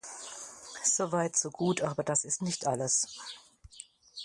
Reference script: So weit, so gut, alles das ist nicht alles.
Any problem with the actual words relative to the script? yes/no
yes